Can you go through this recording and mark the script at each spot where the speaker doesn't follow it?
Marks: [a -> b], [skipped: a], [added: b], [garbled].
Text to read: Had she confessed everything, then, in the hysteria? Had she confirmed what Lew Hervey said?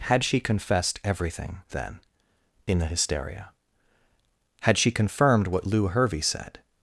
Had she confessed everything, then, in the hysteria? Had she confirmed what Lew Hervey said?